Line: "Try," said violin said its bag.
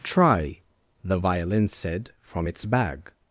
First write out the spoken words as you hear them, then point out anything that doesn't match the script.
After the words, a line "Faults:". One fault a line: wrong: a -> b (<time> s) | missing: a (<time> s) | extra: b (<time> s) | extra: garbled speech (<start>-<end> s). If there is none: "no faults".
"Try," the violin said from its bag.
Faults:
wrong: said -> the (1.0 s)
extra: from (2.2 s)